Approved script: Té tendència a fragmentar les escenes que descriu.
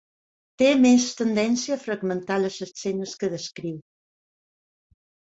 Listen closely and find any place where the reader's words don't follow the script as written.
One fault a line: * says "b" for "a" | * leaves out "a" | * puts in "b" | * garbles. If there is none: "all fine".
* puts in "més"